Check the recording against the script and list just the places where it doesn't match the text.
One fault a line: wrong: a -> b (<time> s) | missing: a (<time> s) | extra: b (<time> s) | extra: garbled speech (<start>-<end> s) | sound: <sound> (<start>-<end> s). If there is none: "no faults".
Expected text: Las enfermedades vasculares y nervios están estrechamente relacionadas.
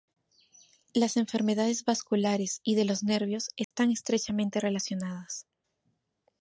extra: de los (2.7 s)
sound: dropout (3.6-3.7 s)